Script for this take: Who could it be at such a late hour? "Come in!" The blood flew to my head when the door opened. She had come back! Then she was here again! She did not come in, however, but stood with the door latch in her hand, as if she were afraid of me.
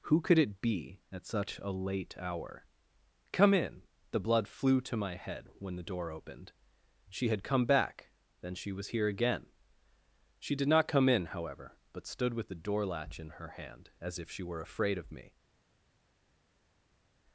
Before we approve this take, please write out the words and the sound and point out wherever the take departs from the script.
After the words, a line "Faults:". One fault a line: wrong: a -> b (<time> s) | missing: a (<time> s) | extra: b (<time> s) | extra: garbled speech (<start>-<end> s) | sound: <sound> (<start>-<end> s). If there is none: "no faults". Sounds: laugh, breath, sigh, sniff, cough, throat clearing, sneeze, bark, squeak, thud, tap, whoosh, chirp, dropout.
Who could it be at such a late hour? "Come in!" The blood flew to my head when the door opened. She had come back! Then she was here again! She did not come in, however, but stood with the door latch in her hand, as if she were afraid of me.
Faults:
no faults